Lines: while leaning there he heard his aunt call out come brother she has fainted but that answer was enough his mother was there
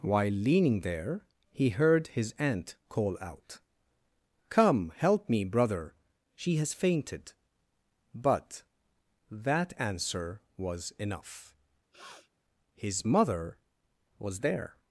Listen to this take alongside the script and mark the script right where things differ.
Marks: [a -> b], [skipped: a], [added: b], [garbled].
while leaning there he heard his aunt call out come [added: help me] brother she has fainted but that answer was enough his mother was there